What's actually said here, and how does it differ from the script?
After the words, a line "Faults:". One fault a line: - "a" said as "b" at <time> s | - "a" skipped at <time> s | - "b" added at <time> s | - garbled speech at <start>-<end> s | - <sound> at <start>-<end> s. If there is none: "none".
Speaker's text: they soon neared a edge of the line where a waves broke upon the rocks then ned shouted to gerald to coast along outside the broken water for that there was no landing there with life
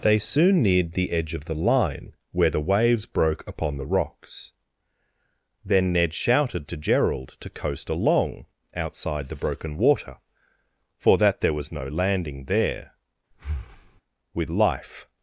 they soon neared the edge of the line where the waves broke upon the rocks then ned shouted to gerald to coast along outside the broken water for that there was no landing there with life
Faults:
- "a" said as "the" at 0.9 s
- "a" said as "the" at 2.5 s
- breath at 13.3-14.0 s